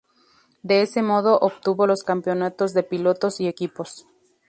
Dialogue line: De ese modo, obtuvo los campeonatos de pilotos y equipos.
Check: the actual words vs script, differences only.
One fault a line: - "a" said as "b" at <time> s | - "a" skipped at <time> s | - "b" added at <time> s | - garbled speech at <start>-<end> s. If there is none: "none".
none